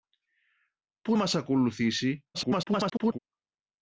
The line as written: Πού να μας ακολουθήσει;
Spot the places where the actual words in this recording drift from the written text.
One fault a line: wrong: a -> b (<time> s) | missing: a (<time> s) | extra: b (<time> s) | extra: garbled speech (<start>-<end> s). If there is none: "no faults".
missing: να (1.2 s)
extra: garbled speech (2.3-3.2 s)